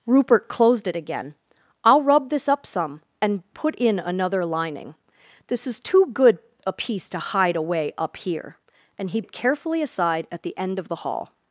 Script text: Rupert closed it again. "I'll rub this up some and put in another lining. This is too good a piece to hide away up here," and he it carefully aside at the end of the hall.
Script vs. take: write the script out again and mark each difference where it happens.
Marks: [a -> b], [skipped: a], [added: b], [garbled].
Rupert closed it again. "I'll rub this up some and put in another lining. This is too good a piece to hide away up here," and he it carefully aside at the end of the hall.